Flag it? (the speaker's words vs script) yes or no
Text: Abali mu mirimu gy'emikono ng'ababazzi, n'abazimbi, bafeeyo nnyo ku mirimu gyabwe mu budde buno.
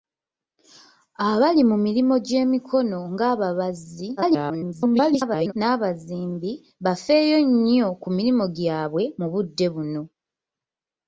yes